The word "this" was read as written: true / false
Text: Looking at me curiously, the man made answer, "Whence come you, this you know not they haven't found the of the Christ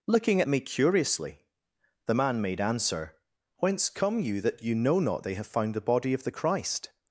false